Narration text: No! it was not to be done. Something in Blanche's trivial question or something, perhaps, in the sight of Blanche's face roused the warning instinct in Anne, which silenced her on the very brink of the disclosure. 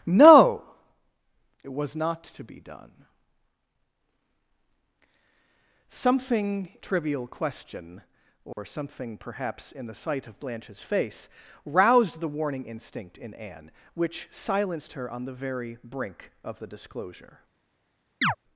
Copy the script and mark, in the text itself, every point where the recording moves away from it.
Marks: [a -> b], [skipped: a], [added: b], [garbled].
No! it was not to be done. Something [skipped: in Blanche's] trivial question or something, perhaps, in the sight of Blanche's face roused the warning instinct in Anne, which silenced her on the very brink of the disclosure.